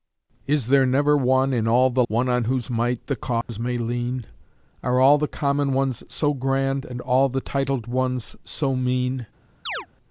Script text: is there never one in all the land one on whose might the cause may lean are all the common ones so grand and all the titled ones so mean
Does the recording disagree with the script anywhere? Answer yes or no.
yes